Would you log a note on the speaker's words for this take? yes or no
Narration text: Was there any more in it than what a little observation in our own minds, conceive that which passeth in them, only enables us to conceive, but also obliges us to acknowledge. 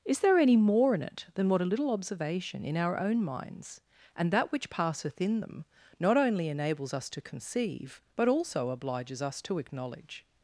yes